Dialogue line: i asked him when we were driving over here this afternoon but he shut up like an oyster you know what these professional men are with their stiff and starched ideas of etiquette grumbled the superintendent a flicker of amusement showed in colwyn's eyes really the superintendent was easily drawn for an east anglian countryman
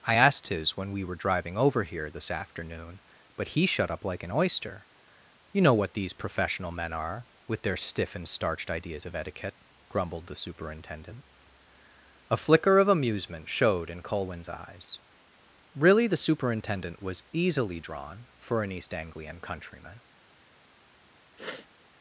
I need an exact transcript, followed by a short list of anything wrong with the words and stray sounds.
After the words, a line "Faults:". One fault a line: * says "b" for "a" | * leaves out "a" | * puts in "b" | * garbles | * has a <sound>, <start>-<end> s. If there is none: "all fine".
i asked his when we were driving over here this afternoon but he shut up like an oyster you know what these professional men are with their stiff and starched ideas of etiquette grumbled the superintendent a flicker of amusement showed in colwyn's eyes really the superintendent was easily drawn for an east anglian countryman
Faults:
* says "his" for "him"
* has a sniff, 21.4-21.7 s